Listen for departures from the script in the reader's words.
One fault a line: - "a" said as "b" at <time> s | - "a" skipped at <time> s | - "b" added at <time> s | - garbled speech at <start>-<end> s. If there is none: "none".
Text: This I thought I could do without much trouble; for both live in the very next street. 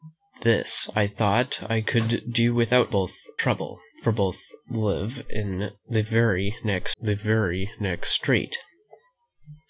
- "much" said as "both" at 2.9 s
- "the very next" added at 7.0 s